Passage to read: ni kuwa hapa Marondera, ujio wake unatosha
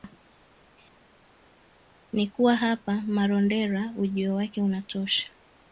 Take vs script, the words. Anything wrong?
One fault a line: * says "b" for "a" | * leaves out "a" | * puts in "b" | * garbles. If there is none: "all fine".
all fine